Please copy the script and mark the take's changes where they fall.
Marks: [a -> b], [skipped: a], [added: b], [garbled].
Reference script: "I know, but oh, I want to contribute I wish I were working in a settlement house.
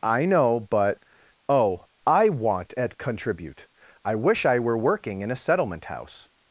"I know, but oh, I want [to -> at] contribute I wish I were working in a settlement house.